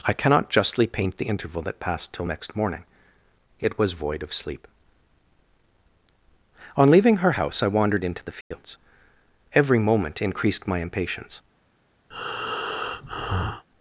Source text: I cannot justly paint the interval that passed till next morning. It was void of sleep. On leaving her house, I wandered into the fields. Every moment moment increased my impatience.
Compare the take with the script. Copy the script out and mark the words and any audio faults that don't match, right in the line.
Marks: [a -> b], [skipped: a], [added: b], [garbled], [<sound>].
I cannot justly paint the interval that passed till next morning. It was void of sleep. On leaving her house, I wandered into the fields. [dropout] Every moment [skipped: moment] increased my impatience. [breath]